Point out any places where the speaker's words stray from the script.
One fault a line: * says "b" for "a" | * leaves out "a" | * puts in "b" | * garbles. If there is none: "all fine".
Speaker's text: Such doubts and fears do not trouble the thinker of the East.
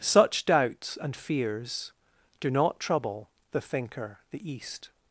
* leaves out "of"